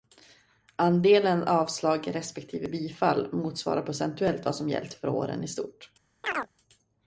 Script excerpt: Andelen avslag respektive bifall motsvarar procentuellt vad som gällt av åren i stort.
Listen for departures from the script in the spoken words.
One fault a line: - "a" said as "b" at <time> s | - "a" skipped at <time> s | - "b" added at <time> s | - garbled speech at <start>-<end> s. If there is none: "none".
- "av" said as "för" at 4.9 s